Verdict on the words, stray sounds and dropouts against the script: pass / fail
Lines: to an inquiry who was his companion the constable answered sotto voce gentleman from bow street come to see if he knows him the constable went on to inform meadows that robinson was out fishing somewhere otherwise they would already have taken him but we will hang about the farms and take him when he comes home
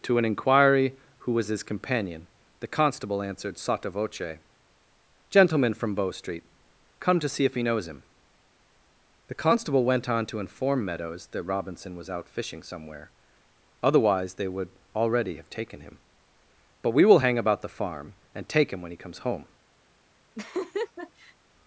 fail